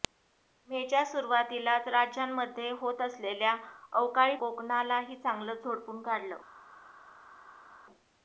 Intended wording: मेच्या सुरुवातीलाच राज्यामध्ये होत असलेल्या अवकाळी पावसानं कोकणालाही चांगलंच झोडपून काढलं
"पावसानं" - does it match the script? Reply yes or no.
no